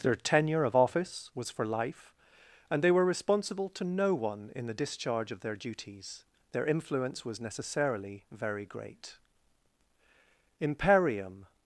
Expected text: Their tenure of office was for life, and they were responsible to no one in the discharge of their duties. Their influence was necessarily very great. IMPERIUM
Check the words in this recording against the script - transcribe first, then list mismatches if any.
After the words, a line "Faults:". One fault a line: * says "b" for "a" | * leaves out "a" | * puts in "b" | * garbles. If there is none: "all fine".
Their tenure of office was for life, and they were responsible to no one in the discharge of their duties. Their influence was necessarily very great. IMPERIUM
Faults:
all fine